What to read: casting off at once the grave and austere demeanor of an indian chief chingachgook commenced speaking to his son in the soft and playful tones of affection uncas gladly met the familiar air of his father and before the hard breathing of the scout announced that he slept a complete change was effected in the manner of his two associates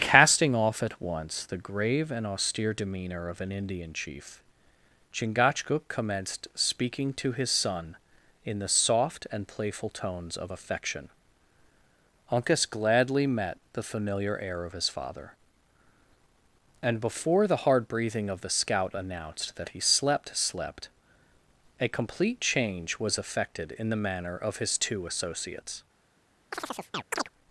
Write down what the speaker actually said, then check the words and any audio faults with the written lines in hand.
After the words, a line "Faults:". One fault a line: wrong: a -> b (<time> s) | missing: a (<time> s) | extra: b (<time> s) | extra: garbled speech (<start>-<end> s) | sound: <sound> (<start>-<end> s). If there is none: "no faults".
casting off at once the grave and austere demeanor of an indian chief chingachgook commenced speaking to his son in the soft and playful tones of affection uncas gladly met the familiar air of his father and before the hard breathing of the scout announced that he slept slept a complete change was effected in the manner of his two associates
Faults:
extra: slept (20.3 s)
sound: chirp (26.5-27.3 s)